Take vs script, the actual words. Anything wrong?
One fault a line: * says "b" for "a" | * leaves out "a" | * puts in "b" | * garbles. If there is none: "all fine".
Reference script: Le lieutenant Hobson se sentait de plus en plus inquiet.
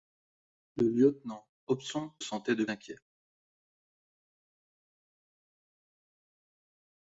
* leaves out "se"
* leaves out "plus en plus"